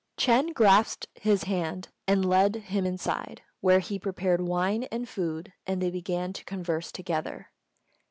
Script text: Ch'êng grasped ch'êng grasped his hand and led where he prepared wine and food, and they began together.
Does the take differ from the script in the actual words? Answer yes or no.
yes